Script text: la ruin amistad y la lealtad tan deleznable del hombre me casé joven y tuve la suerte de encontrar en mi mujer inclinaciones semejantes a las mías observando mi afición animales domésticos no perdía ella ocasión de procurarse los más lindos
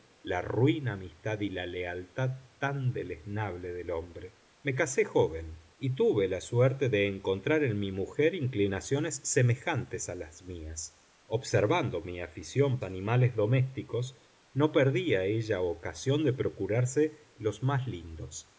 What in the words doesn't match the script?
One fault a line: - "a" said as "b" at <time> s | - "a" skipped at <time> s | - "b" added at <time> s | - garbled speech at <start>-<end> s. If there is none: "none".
none